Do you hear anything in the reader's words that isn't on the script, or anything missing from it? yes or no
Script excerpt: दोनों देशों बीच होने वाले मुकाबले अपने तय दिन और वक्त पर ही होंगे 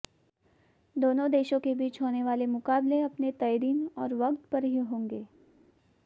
yes